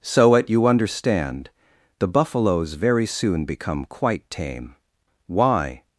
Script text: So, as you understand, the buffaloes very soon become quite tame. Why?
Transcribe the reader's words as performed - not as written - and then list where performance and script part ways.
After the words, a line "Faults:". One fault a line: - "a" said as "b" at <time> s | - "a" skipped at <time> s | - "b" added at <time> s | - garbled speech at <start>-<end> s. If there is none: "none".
So, at you understand, the buffaloes very soon become quite tame. Why?
Faults:
- "as" said as "at" at 0.3 s